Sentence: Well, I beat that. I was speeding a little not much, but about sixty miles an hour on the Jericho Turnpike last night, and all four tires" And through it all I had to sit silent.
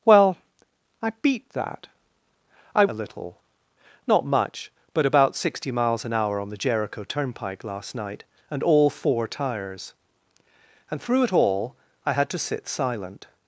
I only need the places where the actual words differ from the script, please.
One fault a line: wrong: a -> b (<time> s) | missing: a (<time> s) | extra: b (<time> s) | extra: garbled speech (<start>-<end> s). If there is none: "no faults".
missing: was speeding (2.9 s)